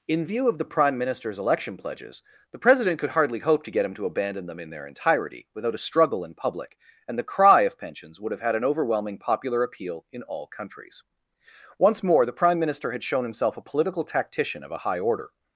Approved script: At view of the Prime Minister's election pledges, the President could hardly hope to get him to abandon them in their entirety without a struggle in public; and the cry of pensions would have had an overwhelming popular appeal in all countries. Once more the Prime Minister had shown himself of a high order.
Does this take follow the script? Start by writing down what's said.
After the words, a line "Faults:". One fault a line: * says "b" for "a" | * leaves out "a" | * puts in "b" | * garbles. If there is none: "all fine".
In view of the Prime Minister's election pledges, the President could hardly hope to get him to abandon them in their entirety without a struggle in public; and the cry of pensions would have had an overwhelming popular appeal in all countries. Once more the Prime Minister had shown himself a political tactician of a high order.
Faults:
* says "In" for "At"
* puts in "a political tactician"